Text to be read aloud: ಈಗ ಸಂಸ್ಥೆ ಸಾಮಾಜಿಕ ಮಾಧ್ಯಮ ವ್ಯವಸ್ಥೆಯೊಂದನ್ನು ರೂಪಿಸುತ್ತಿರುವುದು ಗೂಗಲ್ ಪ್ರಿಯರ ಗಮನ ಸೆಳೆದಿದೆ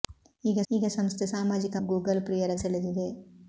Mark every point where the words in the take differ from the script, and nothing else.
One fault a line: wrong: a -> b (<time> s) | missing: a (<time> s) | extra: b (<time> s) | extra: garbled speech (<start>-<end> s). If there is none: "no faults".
extra: ಈಗ (0.7 s)
missing: ಮಾಧ್ಯಮ ವ್ಯವಸ್ಥೆಯೊಂದನ್ನು ರೂಪಿಸುತ್ತಿರುವುದು (1.8 s)
missing: ಗಮನ (2.5 s)